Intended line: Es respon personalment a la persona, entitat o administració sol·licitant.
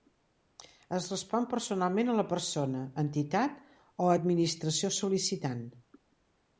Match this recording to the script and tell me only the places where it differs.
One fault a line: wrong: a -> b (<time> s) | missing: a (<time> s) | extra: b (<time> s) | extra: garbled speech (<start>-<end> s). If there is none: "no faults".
no faults